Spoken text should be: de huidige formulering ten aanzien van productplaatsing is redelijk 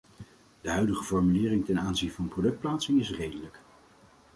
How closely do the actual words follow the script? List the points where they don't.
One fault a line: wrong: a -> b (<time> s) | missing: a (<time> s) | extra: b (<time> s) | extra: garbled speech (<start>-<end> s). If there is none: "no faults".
no faults